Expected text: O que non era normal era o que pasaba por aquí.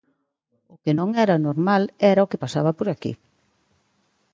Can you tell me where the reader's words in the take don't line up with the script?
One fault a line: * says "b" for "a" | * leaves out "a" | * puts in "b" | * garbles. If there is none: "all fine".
all fine